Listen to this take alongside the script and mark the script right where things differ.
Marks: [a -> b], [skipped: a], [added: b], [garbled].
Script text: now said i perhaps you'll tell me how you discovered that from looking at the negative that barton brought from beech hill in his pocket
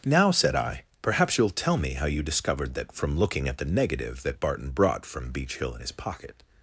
now said i perhaps you'll tell me how you discovered that from looking at the negative that barton brought from beech hill in his pocket